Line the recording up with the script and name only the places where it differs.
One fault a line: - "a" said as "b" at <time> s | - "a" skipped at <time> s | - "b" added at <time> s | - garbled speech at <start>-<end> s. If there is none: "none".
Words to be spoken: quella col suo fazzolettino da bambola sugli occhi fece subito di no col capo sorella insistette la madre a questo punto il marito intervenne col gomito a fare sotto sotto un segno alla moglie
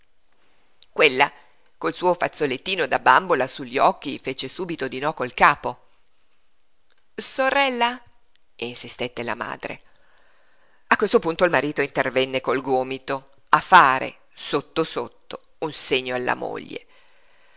none